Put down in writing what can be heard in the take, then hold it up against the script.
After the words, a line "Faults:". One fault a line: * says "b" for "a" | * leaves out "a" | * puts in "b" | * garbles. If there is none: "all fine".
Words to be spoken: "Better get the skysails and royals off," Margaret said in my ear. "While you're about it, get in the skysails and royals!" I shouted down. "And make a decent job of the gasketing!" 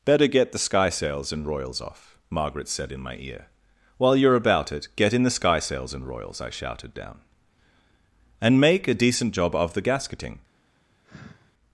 "Better get the skysails and royals off," Margaret said in my ear. "While you're about it, get in the skysails and royals!" I shouted down. "And make a decent job of the gasketing!"
Faults:
all fine